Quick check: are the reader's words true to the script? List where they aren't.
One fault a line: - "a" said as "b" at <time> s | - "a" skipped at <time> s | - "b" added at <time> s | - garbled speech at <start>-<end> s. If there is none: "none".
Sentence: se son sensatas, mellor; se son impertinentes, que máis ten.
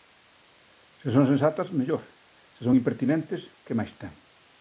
none